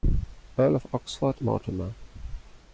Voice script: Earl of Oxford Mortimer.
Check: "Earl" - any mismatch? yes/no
no